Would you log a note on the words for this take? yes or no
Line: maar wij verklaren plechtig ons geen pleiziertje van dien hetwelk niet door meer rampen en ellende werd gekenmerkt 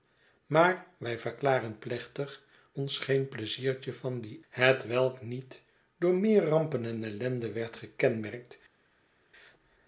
no